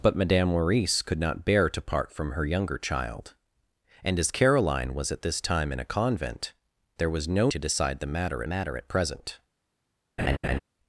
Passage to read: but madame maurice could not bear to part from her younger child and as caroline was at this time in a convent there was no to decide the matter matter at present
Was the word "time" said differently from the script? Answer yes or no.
no